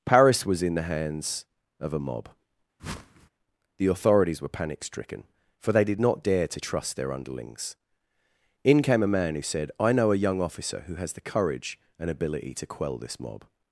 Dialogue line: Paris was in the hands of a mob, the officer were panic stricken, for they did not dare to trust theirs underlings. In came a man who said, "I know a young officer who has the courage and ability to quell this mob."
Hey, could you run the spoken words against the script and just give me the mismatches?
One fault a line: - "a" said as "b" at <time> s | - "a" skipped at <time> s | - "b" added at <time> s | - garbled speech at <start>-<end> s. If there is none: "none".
- "officer" said as "authorities" at 3.9 s
- "theirs" said as "their" at 6.9 s